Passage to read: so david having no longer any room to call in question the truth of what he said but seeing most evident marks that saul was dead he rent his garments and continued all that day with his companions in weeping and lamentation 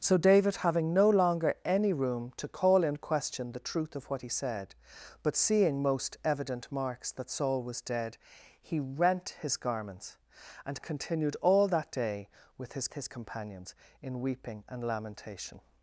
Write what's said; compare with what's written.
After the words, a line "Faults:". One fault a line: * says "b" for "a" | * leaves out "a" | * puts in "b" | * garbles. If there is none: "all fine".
so david having no longer any room to call in question the truth of what he said but seeing most evident marks that saul was dead he rent his garments and continued all that day with his his companions in weeping and lamentation
Faults:
* puts in "his"